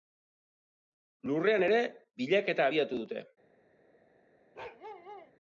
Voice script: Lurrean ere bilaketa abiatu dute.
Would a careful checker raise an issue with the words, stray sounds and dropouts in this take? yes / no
yes